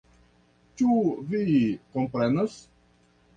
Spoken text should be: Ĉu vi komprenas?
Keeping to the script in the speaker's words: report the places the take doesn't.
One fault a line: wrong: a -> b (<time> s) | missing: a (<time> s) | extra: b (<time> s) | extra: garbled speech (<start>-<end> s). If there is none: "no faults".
no faults